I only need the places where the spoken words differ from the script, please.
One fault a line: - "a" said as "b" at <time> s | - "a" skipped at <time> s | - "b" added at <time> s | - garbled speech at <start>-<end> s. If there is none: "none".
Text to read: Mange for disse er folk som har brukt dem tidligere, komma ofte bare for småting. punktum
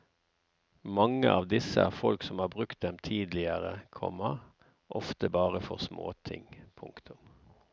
- "for" said as "av" at 1.3 s